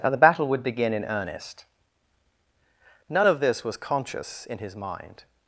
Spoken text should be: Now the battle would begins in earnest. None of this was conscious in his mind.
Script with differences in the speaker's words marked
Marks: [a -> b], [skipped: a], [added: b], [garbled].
Now the battle would [begins -> begin] in earnest. None of this was conscious in his mind.